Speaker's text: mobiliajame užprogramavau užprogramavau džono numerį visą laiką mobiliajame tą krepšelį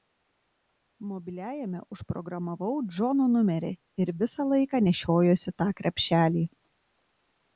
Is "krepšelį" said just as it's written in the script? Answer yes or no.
yes